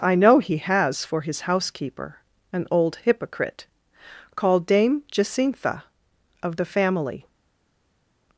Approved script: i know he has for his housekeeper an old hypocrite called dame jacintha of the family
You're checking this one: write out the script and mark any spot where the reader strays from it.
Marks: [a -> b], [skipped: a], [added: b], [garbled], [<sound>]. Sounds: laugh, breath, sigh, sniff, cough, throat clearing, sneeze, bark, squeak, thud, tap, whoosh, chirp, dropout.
i know he has for his housekeeper an old hypocrite called dame jacintha of the family